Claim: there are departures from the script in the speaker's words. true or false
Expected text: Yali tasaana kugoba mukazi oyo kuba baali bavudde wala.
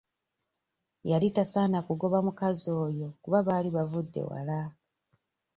false